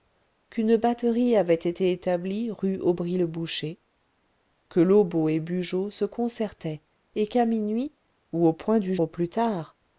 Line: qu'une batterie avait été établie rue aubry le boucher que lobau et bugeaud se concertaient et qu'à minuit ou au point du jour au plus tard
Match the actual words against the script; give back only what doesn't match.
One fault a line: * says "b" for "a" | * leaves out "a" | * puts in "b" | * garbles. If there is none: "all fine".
* leaves out "jour"